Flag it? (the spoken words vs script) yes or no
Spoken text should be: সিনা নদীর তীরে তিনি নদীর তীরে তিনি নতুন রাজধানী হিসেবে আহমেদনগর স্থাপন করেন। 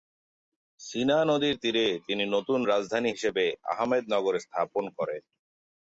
yes